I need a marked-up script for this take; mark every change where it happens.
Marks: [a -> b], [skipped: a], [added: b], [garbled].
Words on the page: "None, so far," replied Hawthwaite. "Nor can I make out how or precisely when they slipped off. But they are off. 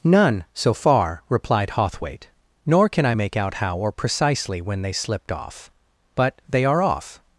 "None, so far," replied Hawthwaite. "Nor can I make out how or precisely when they slipped off. But they are off.